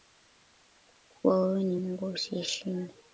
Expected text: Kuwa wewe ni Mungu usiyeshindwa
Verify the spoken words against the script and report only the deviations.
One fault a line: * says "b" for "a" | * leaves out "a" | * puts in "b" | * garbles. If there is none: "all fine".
all fine